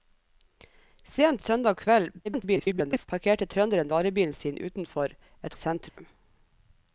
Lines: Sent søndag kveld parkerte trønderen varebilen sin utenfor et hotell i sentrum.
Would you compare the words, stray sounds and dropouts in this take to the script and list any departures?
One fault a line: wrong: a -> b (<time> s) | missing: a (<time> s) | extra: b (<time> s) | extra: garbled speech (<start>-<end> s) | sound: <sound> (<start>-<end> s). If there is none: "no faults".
extra: garbled speech (2.2-3.1 s)
missing: hotell (5.6 s)
sound: dropout (5.9-6.0 s)